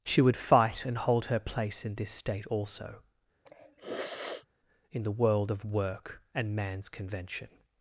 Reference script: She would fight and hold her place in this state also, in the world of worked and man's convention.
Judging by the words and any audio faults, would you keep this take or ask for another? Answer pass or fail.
fail